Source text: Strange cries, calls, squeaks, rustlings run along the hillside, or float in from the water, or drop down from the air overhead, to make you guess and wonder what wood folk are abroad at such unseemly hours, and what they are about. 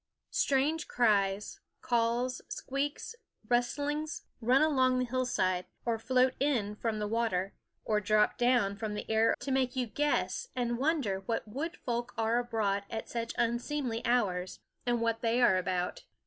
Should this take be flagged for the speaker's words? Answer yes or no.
yes